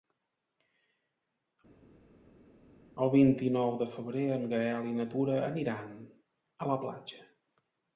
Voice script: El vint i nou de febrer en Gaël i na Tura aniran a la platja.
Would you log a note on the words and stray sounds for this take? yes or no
no